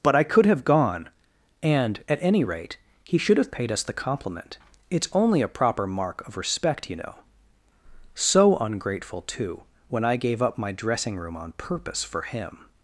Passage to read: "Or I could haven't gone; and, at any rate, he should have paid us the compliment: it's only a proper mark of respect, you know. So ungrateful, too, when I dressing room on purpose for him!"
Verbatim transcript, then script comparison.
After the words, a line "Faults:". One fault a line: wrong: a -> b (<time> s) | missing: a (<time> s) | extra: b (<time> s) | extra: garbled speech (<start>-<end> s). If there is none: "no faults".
"But I could have gone; and, at any rate, he should have paid us the compliment: it's only a proper mark of respect, you know. So ungrateful, too, when I gave up my dressing room on purpose for him!"
Faults:
wrong: Or -> But (0.0 s)
wrong: haven't -> have (0.5 s)
extra: gave up my (10.2 s)